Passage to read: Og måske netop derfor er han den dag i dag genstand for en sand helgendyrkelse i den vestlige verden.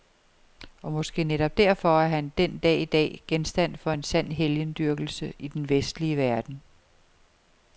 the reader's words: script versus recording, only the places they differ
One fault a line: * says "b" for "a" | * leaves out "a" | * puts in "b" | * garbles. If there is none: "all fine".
all fine